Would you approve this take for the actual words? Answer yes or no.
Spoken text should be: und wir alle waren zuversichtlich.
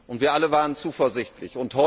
yes